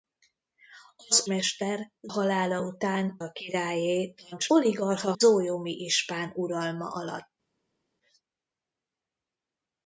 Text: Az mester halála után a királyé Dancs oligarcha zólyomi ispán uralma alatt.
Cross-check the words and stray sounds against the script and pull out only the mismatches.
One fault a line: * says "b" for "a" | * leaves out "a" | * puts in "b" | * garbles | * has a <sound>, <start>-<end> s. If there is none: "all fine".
all fine